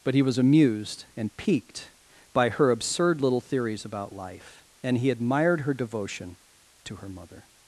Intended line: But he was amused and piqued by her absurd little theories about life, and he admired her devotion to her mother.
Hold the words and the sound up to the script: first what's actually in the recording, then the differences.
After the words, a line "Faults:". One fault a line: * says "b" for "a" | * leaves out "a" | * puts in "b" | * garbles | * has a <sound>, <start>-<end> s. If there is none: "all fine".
But he was amused and piqued by her absurd little theories about life, and he admired her devotion to her mother.
Faults:
all fine